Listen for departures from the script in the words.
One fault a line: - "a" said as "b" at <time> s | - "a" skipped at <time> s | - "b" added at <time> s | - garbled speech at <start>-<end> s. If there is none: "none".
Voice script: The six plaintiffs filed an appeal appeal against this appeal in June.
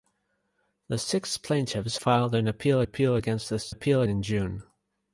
none